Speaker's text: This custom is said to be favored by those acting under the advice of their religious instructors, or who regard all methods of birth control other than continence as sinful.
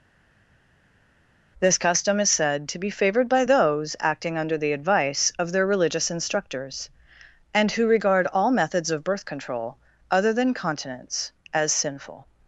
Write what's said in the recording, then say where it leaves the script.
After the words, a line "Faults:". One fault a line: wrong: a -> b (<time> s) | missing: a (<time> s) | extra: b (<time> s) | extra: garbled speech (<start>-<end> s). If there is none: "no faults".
This custom is said to be favored by those acting under the advice of their religious instructors, and who regard all methods of birth control other than continence as sinful.
Faults:
wrong: or -> and (7.5 s)